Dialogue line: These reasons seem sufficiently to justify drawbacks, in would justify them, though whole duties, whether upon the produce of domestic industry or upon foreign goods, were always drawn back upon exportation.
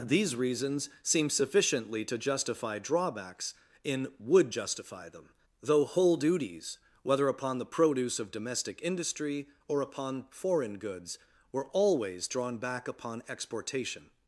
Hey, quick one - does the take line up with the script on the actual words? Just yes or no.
yes